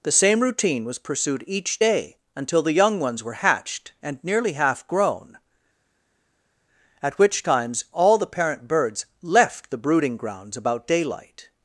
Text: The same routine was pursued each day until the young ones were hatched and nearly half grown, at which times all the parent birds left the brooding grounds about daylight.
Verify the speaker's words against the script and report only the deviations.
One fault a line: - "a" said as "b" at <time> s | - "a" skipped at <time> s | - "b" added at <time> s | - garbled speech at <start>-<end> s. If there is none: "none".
none